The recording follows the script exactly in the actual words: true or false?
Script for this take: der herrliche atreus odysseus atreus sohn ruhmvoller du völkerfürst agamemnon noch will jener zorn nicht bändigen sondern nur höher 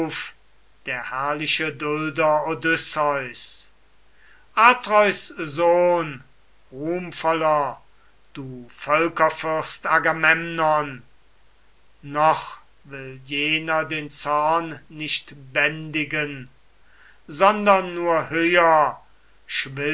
false